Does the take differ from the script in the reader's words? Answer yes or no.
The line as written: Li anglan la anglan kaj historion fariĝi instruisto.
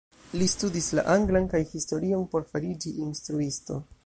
yes